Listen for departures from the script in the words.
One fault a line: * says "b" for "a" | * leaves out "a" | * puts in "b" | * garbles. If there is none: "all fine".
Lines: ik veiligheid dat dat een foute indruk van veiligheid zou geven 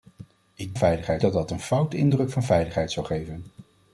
all fine